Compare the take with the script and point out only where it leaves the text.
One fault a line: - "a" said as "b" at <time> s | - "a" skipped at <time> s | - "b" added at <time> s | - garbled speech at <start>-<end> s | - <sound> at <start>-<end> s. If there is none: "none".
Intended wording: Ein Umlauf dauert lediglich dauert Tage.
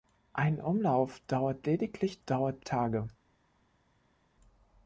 none